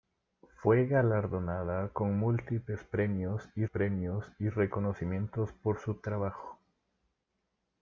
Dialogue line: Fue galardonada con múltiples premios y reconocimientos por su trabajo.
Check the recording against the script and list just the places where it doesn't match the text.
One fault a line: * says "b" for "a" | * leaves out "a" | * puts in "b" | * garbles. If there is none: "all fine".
* puts in "premios y"